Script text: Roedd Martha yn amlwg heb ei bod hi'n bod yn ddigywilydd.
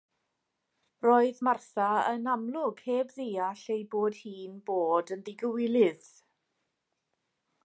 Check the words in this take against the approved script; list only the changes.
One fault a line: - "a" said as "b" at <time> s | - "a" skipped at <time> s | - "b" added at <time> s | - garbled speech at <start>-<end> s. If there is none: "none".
- "ddeall" added at 3.2 s